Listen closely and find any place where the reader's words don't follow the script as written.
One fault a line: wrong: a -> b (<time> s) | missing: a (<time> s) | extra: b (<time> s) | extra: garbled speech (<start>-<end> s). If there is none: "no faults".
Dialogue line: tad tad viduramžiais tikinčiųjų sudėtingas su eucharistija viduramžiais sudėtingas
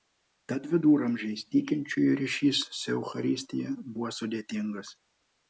missing: tad (0.6 s)
wrong: sudėtingas -> ryšys (2.2 s)
wrong: viduramžiais -> buvo (4.0 s)